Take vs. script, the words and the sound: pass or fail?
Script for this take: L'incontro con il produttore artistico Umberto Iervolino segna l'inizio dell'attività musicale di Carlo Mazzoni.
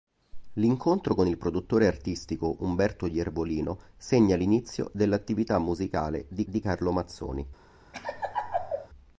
fail